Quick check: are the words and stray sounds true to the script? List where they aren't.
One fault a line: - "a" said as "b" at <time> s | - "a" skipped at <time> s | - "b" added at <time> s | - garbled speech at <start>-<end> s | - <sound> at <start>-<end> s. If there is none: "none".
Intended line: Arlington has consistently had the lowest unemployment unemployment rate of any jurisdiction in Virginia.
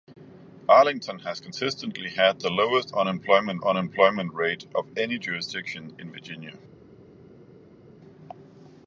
none